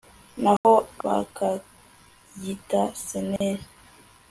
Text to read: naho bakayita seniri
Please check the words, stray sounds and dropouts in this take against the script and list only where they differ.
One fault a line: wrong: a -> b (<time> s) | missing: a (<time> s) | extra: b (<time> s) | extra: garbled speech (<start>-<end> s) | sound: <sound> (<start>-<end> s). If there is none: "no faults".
sound: dropout (0.6-0.6 s)
sound: dropout (3.4-3.4 s)